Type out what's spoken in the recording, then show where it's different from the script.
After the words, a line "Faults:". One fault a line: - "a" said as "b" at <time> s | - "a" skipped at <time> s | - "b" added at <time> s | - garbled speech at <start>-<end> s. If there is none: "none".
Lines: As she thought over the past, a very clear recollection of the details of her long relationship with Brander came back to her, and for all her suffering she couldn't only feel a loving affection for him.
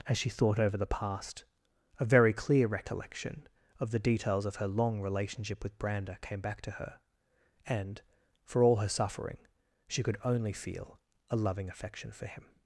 As she thought over the past, a very clear recollection of the details of her long relationship with Brander came back to her, and for all her suffering she could only feel a loving affection for him.
Faults:
- "couldn't" said as "could" at 10.0 s